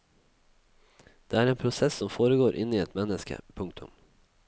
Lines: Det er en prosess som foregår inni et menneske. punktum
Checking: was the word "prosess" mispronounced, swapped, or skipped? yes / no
no